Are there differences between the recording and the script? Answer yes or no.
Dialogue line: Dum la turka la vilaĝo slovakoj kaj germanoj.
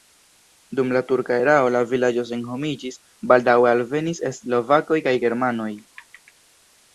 yes